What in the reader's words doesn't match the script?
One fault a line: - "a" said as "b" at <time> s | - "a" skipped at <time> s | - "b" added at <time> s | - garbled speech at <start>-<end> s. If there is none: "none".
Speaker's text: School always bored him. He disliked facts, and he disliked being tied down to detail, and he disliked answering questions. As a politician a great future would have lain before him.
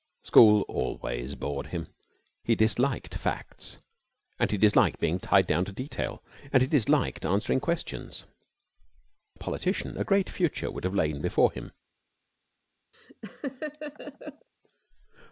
- "As" skipped at 8.2 s